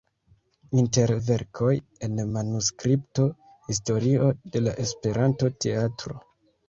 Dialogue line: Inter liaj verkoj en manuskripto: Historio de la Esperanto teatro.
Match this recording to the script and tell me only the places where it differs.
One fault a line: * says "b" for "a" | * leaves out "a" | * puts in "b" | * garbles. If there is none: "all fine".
* leaves out "liaj"